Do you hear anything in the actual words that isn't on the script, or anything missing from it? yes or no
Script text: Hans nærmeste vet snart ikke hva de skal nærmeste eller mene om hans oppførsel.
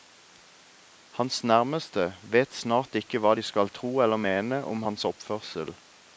yes